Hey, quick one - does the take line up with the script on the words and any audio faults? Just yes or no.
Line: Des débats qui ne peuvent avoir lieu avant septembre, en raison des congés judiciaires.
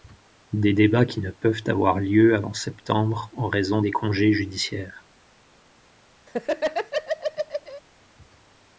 no